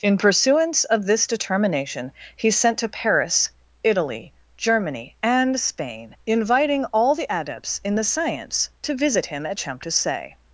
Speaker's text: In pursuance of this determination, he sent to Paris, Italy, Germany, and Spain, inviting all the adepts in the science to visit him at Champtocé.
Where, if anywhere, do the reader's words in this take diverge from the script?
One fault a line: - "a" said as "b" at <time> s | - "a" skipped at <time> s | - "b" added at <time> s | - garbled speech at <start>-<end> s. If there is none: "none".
none